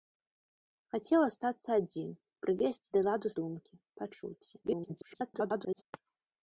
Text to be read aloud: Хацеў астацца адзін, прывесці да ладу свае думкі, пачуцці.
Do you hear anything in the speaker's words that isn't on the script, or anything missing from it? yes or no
yes